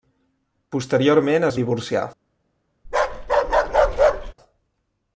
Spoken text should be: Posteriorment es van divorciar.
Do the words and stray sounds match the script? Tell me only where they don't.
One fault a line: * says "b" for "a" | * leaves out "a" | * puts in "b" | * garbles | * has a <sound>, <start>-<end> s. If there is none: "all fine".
* leaves out "van"
* has a bark, 2.8-4.3 s